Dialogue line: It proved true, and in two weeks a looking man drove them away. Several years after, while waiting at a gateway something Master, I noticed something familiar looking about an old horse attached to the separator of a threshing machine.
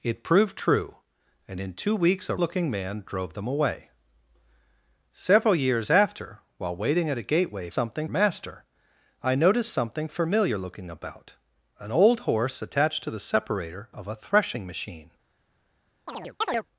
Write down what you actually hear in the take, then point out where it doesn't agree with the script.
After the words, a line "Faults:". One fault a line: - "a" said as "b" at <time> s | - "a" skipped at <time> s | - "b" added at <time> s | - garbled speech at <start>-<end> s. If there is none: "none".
It proved true, and in two weeks a looking man drove them away. Several years after, while waiting at a gateway something Master, I noticed something familiar looking about an old horse attached to the separator of a threshing machine.
Faults:
none